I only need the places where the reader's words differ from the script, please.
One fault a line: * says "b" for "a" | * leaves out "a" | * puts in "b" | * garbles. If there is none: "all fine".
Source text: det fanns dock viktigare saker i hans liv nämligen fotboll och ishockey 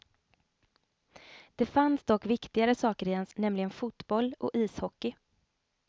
* leaves out "liv"